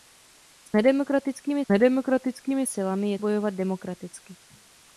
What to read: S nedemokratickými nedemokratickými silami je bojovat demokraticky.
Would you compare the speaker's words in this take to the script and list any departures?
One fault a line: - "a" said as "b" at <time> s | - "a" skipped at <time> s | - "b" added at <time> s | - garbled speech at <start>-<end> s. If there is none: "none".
none